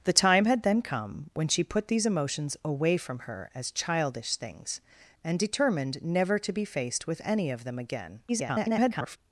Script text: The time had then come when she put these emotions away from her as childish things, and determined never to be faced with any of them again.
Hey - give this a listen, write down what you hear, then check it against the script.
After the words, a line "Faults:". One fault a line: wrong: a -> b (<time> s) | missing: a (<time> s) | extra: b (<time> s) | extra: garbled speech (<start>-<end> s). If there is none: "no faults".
The time had then come when she put these emotions away from her as childish things, and determined never to be faced with any of them again. [garbled]
Faults:
extra: garbled speech (8.3-9.2 s)